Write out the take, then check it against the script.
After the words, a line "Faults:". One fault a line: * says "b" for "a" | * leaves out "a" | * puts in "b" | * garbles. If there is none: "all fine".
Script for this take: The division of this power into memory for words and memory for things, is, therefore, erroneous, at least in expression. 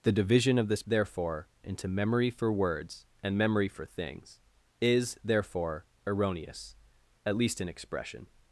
The division of this therefore into memory for words and memory for things, is, therefore, erroneous, at least in expression.
Faults:
* says "therefore" for "power"